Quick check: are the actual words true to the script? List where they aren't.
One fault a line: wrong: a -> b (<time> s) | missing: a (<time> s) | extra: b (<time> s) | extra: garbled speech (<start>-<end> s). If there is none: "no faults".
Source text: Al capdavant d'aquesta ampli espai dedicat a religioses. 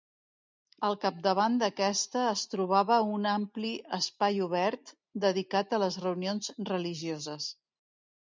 extra: es trobava un (2.3 s)
extra: obert (4.5 s)
extra: les reunions (5.8 s)